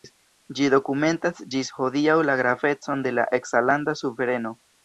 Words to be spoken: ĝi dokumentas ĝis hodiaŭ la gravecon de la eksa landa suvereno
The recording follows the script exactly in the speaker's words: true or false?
true